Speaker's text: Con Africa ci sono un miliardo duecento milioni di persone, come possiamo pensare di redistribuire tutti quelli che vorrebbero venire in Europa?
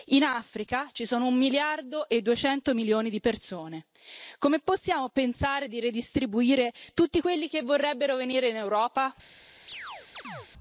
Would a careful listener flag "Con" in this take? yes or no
yes